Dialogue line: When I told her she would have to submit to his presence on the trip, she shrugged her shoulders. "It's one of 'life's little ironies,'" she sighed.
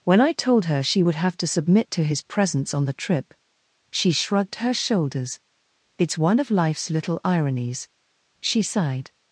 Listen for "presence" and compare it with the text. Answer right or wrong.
right